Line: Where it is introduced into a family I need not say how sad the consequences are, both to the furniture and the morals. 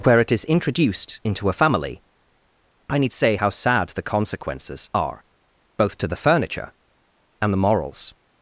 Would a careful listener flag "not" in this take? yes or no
yes